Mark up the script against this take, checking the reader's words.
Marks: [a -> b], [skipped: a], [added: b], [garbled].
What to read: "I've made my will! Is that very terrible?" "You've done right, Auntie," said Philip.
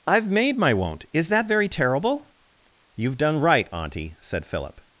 "I've made my [will! -> won't] Is that very terrible?" "You've done right, Auntie," said Philip.